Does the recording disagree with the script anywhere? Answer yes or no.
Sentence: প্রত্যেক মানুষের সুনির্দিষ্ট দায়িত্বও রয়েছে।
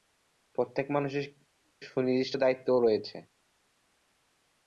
no